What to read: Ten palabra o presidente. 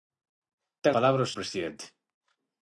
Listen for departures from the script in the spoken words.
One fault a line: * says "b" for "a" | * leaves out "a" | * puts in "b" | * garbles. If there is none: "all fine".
all fine